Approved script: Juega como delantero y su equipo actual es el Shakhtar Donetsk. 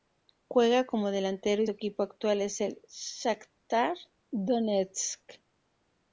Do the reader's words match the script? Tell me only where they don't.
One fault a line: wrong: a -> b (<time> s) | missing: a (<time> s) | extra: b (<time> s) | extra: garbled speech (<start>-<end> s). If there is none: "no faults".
missing: su (1.7 s)